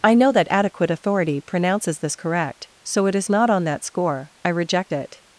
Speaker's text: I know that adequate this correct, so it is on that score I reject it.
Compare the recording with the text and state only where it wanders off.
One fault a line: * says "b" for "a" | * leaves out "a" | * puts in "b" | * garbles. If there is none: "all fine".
* puts in "authority pronounces"
* puts in "not"